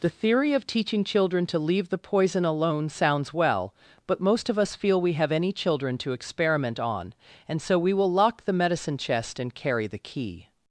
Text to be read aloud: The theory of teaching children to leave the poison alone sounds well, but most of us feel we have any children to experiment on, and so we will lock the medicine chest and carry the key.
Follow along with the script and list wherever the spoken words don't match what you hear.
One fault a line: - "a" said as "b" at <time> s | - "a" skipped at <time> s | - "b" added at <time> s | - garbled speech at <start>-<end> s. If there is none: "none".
none